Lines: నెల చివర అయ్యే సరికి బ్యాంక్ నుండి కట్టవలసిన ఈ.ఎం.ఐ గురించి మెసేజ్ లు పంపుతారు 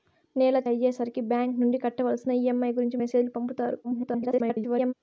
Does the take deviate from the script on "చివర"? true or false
true